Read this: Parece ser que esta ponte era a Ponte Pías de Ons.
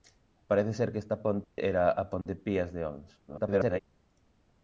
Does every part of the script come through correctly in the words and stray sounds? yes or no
no